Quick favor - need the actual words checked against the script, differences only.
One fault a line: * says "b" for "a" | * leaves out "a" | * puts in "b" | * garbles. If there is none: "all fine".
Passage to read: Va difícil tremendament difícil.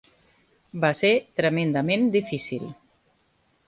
* says "ser" for "difícil"